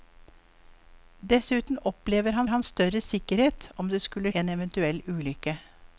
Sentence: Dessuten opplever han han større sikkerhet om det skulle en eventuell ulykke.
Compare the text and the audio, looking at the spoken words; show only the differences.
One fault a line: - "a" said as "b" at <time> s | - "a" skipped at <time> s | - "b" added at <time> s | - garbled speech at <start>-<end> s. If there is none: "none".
none